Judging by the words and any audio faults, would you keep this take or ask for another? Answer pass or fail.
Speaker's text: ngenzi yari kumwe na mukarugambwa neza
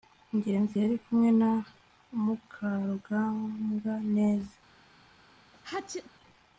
fail